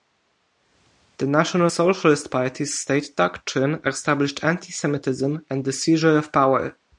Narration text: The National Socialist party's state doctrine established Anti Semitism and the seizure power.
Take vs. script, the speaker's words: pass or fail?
fail